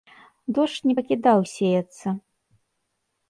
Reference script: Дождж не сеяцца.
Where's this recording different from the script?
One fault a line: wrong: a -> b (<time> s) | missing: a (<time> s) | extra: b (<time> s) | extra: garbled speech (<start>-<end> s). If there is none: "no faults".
extra: пакідаў (1.0 s)